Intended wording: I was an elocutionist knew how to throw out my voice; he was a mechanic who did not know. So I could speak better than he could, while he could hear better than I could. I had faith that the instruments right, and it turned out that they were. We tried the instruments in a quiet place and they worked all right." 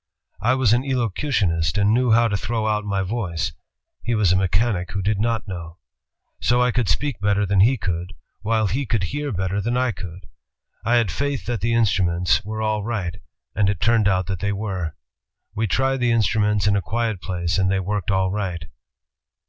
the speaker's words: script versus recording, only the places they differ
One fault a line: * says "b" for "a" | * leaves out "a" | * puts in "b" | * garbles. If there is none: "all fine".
* puts in "and"
* puts in "were all"